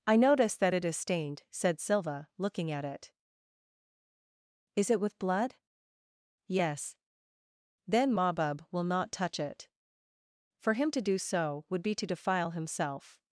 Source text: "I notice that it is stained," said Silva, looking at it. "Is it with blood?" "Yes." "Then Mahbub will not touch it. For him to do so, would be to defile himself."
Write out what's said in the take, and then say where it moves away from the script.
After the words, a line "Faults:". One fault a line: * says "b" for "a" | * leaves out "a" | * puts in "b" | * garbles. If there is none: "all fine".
"I notice that it is stained," said Silva, looking at it. "Is it with blood?" "Yes." "Then Mahbub will not touch it. For him to do so, would be to defile himself."
Faults:
all fine